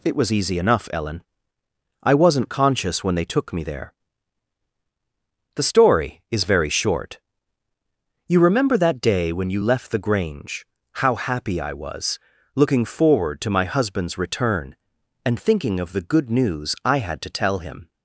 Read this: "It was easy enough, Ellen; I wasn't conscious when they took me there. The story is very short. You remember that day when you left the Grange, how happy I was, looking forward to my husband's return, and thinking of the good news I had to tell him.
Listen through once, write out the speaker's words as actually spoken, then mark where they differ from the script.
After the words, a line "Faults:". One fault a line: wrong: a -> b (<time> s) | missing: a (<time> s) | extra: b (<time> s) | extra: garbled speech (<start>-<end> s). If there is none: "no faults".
"It was easy enough, Ellen; I wasn't conscious when they took me there. The story is very short. You remember that day when you left the Grange, how happy I was, looking forward to my husband's return, and thinking of the good news I had to tell him.
Faults:
no faults